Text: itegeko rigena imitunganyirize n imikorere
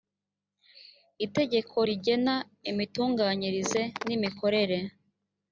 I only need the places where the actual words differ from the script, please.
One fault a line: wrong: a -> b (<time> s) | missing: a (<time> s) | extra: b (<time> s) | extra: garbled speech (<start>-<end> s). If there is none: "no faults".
no faults